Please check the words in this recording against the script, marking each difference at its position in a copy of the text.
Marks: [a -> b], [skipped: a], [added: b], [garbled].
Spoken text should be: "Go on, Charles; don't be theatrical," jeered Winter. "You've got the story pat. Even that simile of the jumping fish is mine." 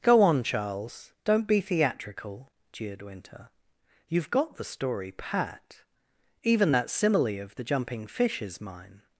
"Go on, Charles; don't be theatrical," jeered Winter. "You've got the story pat. Even that simile of the jumping fish is mine."